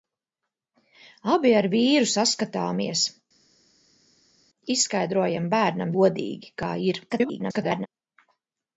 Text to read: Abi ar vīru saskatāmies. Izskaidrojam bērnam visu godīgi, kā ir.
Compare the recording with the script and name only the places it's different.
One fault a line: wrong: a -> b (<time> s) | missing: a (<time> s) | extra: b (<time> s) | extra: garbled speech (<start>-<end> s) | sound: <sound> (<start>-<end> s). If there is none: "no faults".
missing: visu (6.0 s)
extra: garbled speech (7.1-7.9 s)